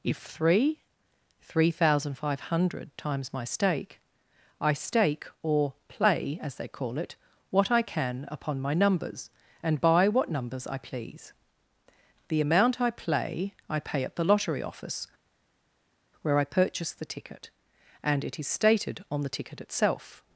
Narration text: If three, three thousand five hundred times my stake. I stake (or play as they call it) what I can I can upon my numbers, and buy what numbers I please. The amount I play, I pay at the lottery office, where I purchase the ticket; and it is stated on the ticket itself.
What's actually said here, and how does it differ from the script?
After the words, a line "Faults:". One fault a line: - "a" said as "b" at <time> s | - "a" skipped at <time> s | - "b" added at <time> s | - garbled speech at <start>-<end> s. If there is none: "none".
If three, three thousand five hundred times my stake. I stake (or play as they call it) what I can upon my numbers, and buy what numbers I please. The amount I play, I pay at the lottery office, where I purchase the ticket; and it is stated on the ticket itself.
Faults:
- "I can" skipped at 8.3 s